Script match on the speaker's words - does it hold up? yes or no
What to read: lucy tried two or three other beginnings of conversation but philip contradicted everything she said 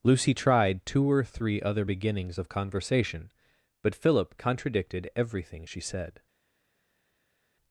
yes